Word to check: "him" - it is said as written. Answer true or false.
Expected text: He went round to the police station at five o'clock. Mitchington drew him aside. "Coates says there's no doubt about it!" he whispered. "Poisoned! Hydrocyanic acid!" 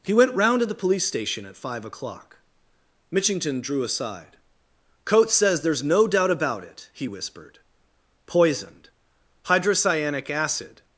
false